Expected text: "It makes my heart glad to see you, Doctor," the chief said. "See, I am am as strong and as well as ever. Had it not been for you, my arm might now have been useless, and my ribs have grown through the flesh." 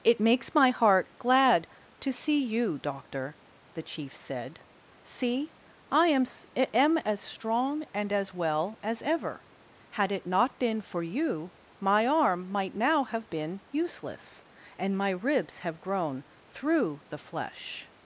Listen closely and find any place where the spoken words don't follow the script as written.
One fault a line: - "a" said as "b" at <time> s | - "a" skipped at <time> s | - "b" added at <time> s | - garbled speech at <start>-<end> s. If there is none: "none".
none